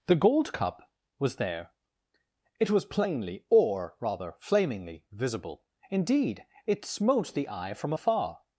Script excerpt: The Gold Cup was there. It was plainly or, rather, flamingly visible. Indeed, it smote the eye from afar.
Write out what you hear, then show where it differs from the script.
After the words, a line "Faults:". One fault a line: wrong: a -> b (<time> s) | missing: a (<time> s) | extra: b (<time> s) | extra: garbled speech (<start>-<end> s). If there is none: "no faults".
The Gold Cup was there. It was plainly or, rather, flamingly visible. Indeed, it smote the eye from afar.
Faults:
no faults